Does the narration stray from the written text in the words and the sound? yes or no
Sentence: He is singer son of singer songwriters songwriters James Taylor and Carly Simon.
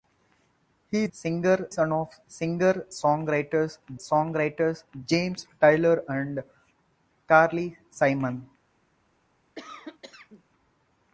yes